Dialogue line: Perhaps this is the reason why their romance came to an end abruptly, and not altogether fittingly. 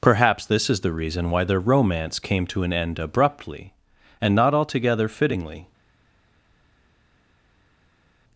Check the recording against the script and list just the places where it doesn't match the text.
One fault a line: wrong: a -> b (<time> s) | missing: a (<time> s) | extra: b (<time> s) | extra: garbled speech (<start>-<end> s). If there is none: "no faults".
no faults